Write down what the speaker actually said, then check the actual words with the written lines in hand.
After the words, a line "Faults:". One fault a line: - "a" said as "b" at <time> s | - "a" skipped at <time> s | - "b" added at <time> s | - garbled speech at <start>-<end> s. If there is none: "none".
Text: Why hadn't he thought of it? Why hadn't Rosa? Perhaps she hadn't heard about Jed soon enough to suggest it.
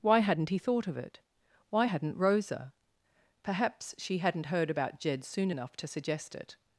Why hadn't he thought of it? Why hadn't Rosa? Perhaps she hadn't heard about Jed soon enough to suggest it.
Faults:
none